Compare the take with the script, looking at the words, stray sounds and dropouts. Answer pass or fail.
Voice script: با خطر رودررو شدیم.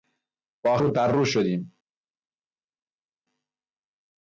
fail